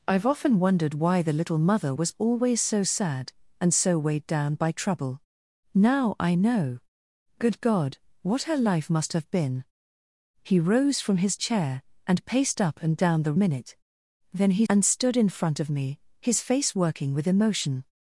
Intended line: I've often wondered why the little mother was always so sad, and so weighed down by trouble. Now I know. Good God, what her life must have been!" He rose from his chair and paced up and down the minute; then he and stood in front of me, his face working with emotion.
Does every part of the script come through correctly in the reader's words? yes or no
yes